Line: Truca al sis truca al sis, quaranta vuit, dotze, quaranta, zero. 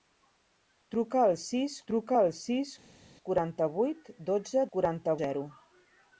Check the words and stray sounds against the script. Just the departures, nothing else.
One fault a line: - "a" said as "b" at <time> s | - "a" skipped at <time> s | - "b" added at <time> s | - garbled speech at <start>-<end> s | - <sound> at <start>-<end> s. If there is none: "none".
none